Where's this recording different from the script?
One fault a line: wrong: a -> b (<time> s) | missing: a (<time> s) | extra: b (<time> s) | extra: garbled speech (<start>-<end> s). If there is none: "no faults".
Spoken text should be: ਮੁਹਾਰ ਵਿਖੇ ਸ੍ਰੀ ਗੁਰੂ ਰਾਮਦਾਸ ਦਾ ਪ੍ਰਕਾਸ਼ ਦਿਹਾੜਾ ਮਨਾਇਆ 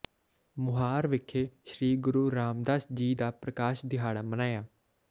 extra: ਜੀ (2.9 s)